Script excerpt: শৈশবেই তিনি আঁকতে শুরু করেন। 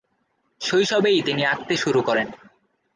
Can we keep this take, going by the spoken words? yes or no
yes